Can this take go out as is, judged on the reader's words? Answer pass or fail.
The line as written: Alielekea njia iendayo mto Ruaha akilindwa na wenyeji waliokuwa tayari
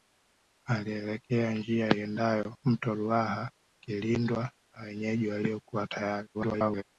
fail